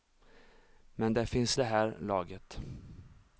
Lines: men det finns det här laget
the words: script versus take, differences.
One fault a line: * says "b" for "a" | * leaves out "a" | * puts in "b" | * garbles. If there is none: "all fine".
all fine